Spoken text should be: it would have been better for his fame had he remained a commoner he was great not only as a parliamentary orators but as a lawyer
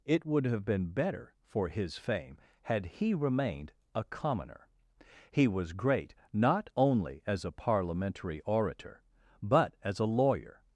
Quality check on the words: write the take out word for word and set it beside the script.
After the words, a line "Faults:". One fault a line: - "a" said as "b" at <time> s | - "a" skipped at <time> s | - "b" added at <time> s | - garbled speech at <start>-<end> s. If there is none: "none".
it would have been better for his fame had he remained a commoner he was great not only as a parliamentary orator but as a lawyer
Faults:
- "orators" said as "orator" at 8.4 s